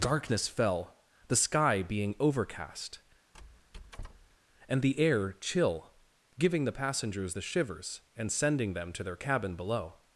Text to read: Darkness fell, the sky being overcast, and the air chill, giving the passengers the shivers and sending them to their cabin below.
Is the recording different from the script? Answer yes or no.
no